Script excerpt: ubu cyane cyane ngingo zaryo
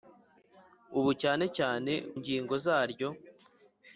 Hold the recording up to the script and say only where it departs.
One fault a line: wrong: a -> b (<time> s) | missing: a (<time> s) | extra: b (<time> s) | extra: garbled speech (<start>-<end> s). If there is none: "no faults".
no faults